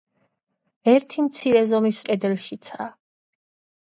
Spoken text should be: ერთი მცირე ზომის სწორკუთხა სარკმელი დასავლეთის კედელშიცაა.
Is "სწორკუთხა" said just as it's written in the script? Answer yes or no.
no